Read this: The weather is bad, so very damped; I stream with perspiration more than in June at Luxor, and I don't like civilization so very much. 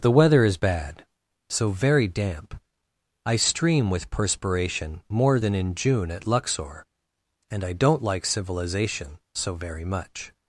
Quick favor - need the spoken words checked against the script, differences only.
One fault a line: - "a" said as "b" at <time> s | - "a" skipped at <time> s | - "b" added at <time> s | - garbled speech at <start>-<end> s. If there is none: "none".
- "damped" said as "damp" at 2.1 s